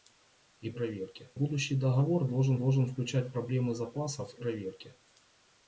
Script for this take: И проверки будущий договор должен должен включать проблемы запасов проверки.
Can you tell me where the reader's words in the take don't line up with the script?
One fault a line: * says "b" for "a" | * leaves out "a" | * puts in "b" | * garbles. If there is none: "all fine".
all fine